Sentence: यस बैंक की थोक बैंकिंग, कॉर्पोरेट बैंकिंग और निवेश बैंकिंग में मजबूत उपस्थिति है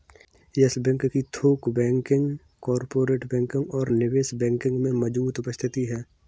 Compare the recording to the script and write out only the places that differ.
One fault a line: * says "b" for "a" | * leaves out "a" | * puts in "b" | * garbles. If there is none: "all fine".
all fine